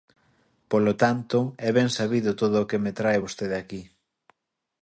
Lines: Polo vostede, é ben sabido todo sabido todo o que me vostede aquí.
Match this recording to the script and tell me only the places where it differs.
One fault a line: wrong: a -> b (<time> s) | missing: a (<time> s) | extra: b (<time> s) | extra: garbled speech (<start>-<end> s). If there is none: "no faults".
wrong: vostede -> tanto (1.0 s)
missing: sabido todo (2.5 s)
extra: trae (3.0 s)